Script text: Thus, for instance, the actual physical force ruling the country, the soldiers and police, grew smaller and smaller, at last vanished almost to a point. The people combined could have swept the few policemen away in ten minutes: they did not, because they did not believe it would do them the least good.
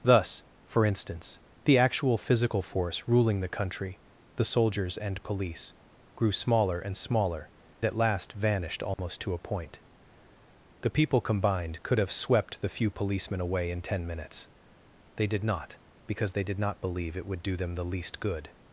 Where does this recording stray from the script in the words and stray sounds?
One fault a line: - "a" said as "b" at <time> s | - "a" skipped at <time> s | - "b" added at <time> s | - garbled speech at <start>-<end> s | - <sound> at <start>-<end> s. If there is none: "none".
- dropout at 8.9-9.0 s